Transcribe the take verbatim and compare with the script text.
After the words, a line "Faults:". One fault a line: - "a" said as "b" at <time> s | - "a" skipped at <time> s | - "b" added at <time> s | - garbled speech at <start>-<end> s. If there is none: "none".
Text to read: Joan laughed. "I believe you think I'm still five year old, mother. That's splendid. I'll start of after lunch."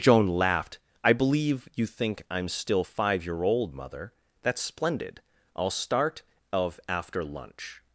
Joan laughed. "I believe you think I'm still five year old, mother. That's splendid. I'll start of after lunch."
Faults:
none